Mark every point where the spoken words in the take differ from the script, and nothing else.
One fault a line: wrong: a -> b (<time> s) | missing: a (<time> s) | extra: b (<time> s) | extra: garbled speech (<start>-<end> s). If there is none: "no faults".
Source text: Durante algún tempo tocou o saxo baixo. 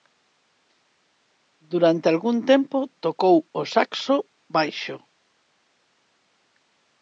no faults